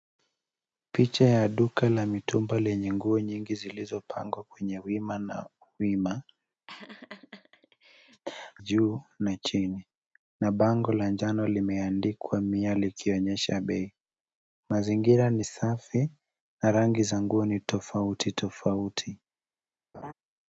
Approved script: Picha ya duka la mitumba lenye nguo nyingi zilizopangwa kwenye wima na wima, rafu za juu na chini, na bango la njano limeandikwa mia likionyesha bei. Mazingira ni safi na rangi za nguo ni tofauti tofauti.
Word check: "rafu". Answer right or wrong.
wrong